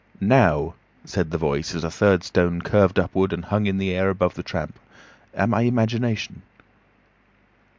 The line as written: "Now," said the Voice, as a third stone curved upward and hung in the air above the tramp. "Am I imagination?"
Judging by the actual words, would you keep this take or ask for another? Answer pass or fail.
pass